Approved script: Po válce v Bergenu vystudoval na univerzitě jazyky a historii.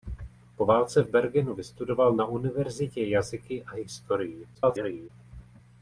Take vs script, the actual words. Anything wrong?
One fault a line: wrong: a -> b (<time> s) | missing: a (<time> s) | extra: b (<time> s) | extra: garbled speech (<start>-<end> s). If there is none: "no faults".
extra: garbled speech (4.5-5.1 s)